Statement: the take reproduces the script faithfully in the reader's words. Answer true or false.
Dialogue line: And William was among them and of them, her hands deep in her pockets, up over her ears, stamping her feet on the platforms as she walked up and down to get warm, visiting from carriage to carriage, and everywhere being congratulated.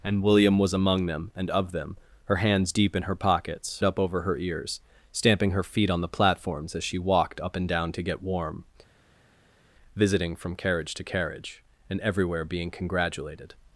true